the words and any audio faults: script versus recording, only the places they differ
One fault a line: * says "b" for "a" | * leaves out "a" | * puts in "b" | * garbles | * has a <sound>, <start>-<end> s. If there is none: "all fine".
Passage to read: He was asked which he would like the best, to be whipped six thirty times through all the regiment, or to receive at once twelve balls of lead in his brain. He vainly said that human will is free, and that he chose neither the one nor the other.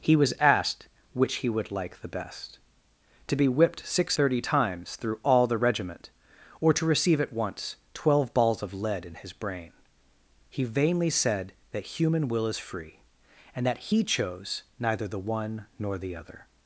all fine